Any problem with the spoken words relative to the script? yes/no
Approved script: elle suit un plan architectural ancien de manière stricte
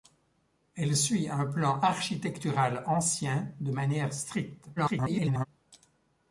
yes